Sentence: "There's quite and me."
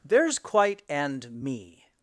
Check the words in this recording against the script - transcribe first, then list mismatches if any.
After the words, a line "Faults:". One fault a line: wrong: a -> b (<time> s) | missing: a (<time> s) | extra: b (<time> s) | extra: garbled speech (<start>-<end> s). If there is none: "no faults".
"There's quite and me."
Faults:
no faults